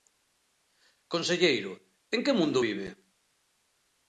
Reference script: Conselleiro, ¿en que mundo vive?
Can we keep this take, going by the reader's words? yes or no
yes